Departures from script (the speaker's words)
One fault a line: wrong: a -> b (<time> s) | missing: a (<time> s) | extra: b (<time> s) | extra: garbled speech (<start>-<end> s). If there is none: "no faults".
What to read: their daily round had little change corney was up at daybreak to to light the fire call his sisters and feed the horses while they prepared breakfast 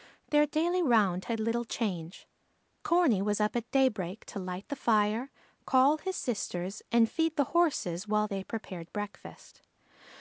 missing: to (4.4 s)